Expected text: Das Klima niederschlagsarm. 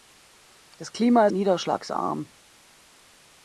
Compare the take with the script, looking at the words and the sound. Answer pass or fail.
pass